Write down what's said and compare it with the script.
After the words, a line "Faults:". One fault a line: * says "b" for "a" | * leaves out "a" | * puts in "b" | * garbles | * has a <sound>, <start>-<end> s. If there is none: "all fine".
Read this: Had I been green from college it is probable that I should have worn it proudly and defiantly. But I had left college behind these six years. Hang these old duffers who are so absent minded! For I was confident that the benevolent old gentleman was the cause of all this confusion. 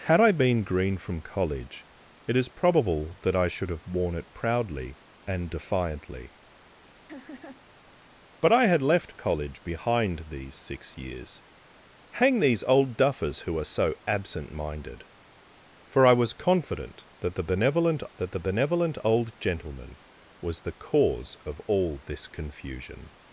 Had I been green from college it is probable that I should have worn it proudly and defiantly. But I had left college behind these six years. Hang these old duffers who are so absent minded! For I was confident that the benevolent that the benevolent old gentleman was the cause of all this confusion.
Faults:
* has a laugh, 7.1-7.7 s
* puts in "that the benevolent"